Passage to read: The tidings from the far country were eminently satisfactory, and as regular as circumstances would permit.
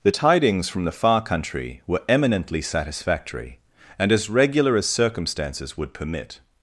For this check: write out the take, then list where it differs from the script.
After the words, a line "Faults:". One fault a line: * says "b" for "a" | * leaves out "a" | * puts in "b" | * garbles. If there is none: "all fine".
The tidings from the far country were eminently satisfactory, and as regular as circumstances would permit.
Faults:
all fine